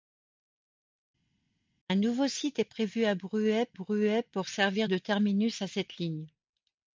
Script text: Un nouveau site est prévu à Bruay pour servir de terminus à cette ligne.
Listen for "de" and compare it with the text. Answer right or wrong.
right